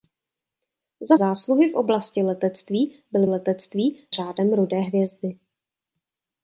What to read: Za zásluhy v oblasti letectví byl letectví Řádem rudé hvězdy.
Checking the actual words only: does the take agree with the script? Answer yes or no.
yes